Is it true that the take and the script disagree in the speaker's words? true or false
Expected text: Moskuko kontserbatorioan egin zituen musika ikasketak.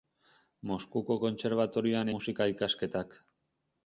true